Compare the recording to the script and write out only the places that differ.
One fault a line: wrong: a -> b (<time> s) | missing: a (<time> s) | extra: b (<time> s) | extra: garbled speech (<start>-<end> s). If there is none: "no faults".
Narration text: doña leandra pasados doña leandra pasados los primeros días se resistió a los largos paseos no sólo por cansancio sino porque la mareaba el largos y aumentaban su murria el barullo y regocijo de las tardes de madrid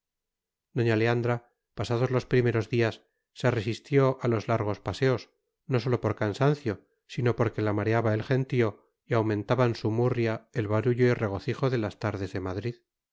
missing: doña leandra pasados (2.1 s)
wrong: largos -> gentío (8.2 s)